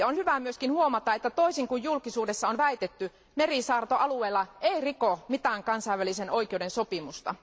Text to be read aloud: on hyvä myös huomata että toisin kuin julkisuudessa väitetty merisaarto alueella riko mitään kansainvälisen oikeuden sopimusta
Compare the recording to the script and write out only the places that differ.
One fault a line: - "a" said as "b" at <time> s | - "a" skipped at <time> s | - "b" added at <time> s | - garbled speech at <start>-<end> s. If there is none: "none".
- "on" added at 2.5 s
- "ei" added at 4.6 s